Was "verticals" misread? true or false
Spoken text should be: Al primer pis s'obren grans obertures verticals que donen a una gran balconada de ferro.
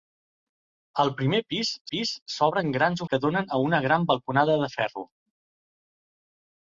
true